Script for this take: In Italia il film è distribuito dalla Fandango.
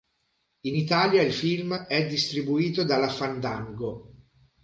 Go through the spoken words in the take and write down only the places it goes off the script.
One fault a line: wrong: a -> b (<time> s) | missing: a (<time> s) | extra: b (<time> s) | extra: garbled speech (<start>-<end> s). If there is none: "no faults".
no faults